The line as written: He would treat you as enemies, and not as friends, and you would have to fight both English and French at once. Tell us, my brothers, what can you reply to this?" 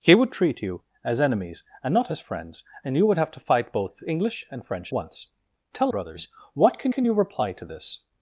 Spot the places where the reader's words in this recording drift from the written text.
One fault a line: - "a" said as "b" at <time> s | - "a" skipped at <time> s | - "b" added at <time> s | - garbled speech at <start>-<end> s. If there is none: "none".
- "at" skipped at 4.9 s
- "us my" skipped at 5.9 s
- "can" added at 6.9 s